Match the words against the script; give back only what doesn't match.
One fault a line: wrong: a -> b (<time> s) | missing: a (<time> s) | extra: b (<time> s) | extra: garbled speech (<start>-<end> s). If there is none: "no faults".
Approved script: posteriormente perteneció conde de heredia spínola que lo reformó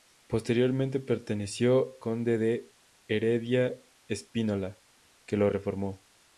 no faults